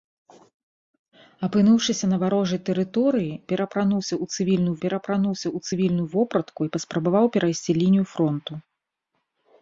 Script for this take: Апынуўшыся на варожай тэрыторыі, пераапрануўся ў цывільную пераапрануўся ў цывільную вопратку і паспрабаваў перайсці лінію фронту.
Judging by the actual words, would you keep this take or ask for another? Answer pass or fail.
pass